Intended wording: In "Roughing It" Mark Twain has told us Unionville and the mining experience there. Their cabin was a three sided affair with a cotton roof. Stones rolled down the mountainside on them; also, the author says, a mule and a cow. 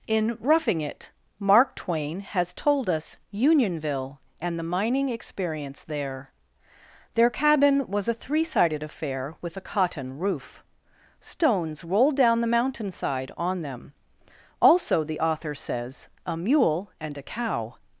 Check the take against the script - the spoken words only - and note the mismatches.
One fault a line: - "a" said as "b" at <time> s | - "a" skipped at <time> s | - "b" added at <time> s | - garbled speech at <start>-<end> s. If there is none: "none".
none